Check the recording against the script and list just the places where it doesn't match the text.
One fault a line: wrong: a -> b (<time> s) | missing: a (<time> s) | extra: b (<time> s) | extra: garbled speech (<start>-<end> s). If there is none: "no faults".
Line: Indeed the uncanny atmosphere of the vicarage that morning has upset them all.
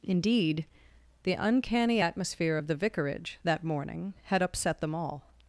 wrong: has -> had (4.2 s)